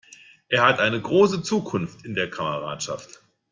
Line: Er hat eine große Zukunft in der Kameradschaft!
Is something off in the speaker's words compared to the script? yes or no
no